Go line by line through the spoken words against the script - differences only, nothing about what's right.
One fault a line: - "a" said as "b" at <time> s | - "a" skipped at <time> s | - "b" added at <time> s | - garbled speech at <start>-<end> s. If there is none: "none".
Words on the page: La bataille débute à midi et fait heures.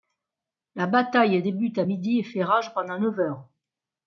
- "rage pendant neuf" added at 2.4 s